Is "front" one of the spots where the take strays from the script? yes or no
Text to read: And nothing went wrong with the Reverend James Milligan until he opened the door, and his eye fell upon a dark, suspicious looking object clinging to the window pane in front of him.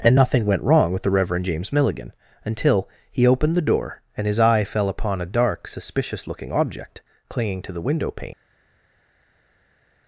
yes